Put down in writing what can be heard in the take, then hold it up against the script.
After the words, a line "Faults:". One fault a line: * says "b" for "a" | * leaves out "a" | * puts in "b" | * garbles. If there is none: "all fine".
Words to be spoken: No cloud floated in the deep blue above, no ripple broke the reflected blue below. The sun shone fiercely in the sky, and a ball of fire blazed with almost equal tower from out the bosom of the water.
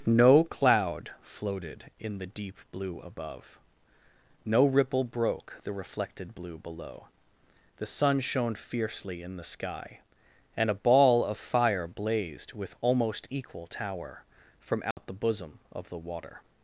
No cloud floated in the deep blue above, no ripple broke the reflected blue below. The sun shone fiercely in the sky, and a ball of fire blazed with almost equal tower from out the bosom of the water.
Faults:
all fine